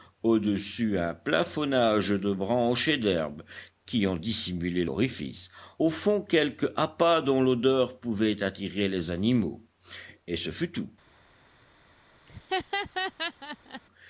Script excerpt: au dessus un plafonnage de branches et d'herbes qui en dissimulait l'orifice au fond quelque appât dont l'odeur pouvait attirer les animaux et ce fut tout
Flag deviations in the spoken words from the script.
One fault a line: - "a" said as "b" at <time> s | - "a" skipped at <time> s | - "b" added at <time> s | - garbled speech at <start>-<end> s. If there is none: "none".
none